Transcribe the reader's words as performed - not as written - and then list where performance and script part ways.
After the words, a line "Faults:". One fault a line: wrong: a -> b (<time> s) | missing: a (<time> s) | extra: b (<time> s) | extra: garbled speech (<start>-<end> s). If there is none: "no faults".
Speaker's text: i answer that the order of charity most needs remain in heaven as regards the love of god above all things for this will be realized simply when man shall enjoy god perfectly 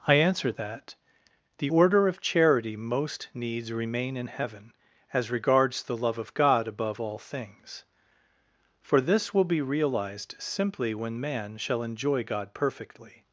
i answer that the order of charity most needs remain in heaven as regards the love of god above all things for this will be realized simply when man shall enjoy god perfectly
Faults:
no faults